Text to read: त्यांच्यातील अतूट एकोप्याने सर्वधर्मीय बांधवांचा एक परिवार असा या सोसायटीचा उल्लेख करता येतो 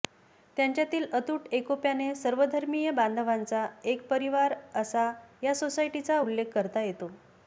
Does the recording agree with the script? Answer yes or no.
yes